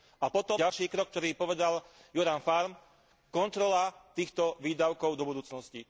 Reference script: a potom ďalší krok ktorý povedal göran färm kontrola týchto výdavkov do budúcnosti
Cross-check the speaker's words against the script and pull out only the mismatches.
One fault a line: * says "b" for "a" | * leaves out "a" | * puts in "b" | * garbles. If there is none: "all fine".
all fine